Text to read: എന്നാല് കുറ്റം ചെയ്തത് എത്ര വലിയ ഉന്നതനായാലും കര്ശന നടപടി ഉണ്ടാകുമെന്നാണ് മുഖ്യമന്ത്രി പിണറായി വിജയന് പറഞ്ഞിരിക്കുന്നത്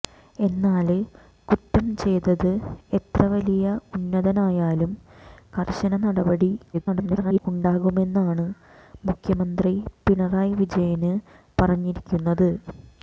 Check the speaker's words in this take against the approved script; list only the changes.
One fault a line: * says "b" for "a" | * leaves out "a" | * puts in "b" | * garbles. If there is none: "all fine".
* garbles